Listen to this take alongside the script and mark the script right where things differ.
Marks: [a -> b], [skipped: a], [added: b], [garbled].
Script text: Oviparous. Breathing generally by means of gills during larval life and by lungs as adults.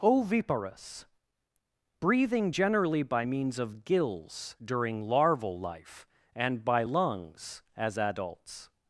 Oviparous. Breathing generally by means of gills during larval life and by lungs as adults.